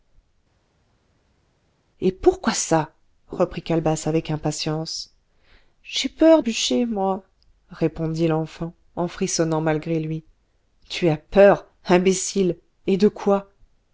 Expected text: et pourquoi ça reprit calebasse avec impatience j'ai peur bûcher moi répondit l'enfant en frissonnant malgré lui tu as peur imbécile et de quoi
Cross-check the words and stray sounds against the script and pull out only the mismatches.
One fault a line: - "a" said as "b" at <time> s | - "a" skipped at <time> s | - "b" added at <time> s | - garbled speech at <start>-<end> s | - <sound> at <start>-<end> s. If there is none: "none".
none